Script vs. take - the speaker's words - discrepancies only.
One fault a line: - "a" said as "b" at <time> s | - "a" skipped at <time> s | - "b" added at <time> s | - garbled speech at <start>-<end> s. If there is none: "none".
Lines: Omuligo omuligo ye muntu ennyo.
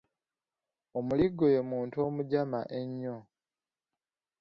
- "omuligo" skipped at 1.4 s
- "omujama" added at 2.1 s